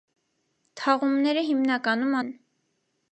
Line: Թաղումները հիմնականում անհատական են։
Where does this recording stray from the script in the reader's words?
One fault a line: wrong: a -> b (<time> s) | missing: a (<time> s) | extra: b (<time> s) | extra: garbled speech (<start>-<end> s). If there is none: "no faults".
missing: անհատական (2.2 s)